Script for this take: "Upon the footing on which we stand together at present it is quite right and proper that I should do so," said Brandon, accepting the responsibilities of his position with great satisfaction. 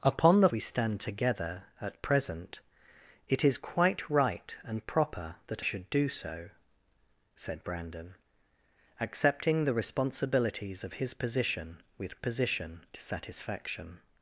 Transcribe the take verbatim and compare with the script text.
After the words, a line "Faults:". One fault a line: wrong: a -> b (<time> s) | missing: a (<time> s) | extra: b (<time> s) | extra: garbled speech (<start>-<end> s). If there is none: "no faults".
"Upon the we stand together at present it is quite right and proper that should do so," said Brandon, accepting the responsibilities of his position with position satisfaction.
Faults:
missing: footing on which (0.5 s)
missing: I (5.6 s)
wrong: great -> position (12.2 s)